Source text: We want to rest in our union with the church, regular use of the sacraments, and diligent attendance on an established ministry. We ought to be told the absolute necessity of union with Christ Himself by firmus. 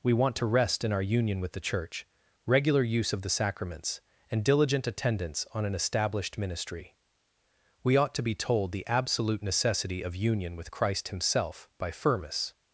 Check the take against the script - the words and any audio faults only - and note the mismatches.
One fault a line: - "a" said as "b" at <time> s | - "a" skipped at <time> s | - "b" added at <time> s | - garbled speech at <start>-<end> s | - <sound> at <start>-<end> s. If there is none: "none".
none